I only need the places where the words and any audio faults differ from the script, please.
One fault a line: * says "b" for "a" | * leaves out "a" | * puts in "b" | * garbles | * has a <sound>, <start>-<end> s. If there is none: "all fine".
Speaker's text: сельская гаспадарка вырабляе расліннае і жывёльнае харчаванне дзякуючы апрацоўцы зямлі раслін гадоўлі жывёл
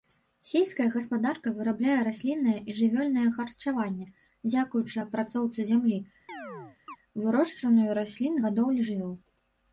* has a chirp, 6.3-7.0 s
* puts in "вырошчванню"